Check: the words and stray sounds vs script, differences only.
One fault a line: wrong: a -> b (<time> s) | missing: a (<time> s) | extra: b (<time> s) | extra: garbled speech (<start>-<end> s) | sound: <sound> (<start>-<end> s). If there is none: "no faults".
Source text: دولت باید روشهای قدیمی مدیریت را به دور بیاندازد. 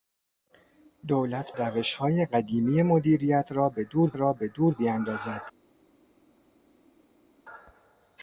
missing: باید (1.6 s)
extra: را به دور (4.1 s)